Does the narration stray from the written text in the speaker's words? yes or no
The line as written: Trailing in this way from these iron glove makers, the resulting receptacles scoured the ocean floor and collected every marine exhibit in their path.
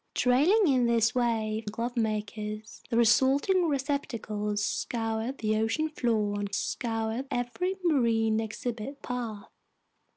yes